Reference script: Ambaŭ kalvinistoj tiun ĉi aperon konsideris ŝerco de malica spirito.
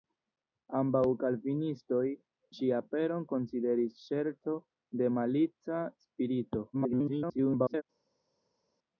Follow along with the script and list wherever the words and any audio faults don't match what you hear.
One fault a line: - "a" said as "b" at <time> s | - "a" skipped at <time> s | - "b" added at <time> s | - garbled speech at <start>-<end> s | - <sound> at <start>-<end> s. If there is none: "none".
- "tiun" skipped at 2.0 s
- garbled speech at 6.7-7.8 s